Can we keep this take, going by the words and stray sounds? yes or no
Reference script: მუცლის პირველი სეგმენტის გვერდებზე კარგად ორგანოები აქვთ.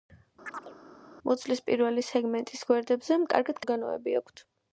no